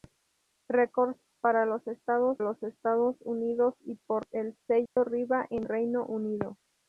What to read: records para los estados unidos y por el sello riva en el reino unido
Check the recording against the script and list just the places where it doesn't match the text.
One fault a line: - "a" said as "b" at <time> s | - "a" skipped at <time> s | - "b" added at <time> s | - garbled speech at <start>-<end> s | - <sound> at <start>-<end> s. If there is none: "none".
- "los estados" added at 2.4 s
- dropout at 4.9-5.0 s
- "el" skipped at 5.7 s